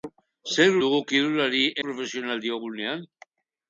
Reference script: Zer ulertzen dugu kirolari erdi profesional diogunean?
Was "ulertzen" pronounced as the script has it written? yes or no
no